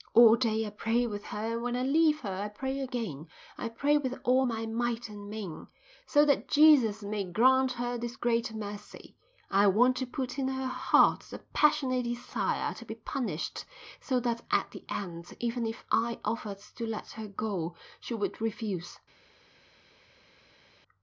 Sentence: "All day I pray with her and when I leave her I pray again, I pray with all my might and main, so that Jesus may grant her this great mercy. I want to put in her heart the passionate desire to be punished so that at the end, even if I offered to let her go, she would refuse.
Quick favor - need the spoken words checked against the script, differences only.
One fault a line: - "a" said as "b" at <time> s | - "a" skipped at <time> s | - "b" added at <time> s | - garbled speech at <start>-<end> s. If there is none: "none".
none